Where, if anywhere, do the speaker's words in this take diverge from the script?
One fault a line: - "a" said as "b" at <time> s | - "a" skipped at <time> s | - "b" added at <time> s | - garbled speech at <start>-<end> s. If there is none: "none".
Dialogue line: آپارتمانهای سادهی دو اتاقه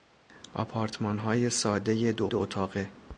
- "دو" added at 2.3 s